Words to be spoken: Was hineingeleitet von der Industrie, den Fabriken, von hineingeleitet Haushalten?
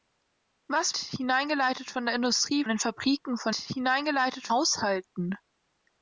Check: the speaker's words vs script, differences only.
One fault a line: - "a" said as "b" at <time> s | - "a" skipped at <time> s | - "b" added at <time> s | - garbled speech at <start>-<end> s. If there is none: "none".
none